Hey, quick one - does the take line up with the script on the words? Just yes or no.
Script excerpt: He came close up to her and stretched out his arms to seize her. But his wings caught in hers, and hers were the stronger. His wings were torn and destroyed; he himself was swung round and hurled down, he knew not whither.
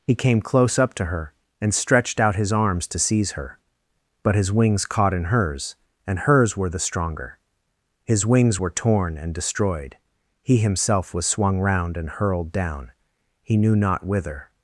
yes